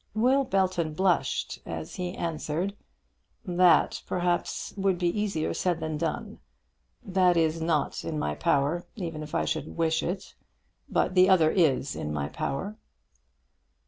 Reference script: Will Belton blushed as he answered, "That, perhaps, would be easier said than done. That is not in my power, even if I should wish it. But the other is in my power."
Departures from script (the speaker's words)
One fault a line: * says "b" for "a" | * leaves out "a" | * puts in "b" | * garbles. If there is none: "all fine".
all fine